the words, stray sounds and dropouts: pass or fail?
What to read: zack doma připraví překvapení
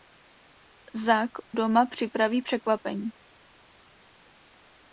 pass